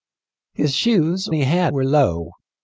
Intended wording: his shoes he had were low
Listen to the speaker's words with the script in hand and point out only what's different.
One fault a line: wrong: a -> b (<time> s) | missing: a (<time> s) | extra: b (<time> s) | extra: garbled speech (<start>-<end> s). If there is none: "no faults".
no faults